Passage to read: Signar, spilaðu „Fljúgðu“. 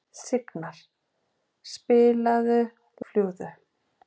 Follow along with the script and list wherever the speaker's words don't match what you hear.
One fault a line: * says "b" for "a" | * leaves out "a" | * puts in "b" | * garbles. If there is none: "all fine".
all fine